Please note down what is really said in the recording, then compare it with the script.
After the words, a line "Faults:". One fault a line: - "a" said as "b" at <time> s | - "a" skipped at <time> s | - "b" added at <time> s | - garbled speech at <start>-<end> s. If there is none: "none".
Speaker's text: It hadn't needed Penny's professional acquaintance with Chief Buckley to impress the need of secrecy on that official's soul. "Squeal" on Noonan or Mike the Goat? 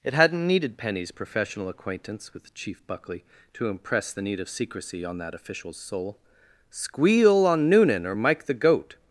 It hadn't needed Penny's professional acquaintance with Chief Buckley to impress the need of secrecy on that official's soul. "Squeal" on Noonan or Mike the Goat?
Faults:
none